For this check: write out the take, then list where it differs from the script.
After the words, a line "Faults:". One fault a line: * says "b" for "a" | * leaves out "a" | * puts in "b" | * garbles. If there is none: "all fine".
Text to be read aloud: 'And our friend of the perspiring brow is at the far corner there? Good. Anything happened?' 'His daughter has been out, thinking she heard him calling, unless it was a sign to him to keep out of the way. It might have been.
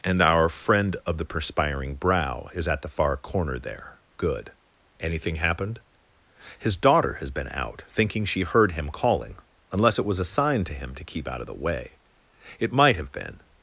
'And our friend of the perspiring brow is at the far corner there? Good. Anything happened?' 'His daughter has been out, thinking she heard him calling, unless it was a sign to him to keep out of the way. It might have been.
Faults:
all fine